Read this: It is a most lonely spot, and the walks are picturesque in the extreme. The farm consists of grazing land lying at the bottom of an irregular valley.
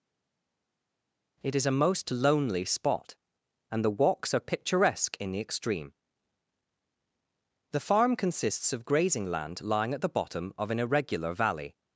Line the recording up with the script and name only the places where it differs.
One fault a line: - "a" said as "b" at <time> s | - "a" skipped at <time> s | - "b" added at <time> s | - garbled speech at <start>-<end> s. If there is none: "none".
none